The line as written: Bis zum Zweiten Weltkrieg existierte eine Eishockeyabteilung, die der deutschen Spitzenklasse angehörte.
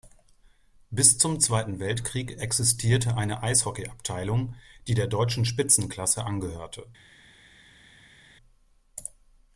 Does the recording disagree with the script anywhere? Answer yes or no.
no